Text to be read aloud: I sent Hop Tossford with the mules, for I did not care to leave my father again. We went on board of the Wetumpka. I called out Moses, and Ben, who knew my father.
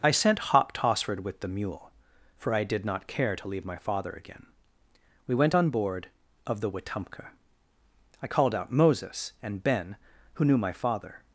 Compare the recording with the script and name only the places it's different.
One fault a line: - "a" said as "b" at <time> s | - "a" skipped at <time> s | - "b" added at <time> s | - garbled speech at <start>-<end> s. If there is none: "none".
- "mules" said as "mule" at 1.5 s